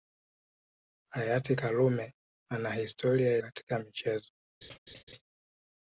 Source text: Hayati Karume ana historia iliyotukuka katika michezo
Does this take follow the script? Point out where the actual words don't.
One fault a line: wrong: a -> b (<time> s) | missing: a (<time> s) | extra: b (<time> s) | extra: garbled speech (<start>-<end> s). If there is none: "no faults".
missing: iliyotukuka (3.4 s)